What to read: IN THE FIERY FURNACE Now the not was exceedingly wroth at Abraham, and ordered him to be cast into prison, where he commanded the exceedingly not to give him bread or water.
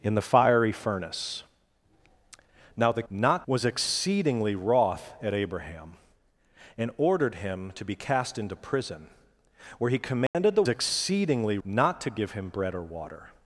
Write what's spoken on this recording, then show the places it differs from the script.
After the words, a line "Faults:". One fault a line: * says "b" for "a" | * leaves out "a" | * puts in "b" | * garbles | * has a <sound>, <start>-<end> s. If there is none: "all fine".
IN THE FIERY FURNACE Now the not was exceedingly wroth at Abraham, and ordered him to be cast into prison, where he commanded the exceedingly not to give him bread or water.
Faults:
* has a dropout, 10.3-10.3 s